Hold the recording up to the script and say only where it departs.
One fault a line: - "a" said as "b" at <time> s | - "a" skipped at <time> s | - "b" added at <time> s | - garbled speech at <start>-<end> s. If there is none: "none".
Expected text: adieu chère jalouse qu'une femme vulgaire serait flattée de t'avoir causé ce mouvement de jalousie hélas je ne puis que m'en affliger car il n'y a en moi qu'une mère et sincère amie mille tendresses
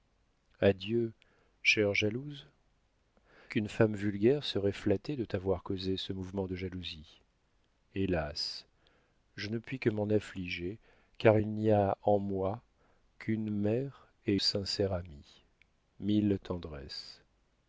none